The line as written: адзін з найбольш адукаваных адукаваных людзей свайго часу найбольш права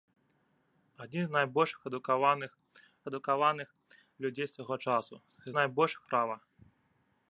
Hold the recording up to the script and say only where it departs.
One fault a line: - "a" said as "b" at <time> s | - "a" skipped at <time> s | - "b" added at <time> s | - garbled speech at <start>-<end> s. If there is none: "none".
none